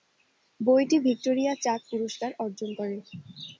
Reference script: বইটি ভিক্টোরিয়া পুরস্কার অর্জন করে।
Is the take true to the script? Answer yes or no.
no